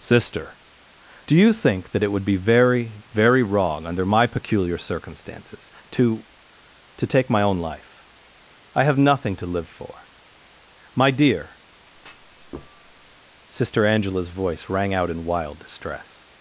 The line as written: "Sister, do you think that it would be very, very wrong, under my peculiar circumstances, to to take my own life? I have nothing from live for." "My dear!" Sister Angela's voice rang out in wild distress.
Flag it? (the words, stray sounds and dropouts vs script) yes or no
yes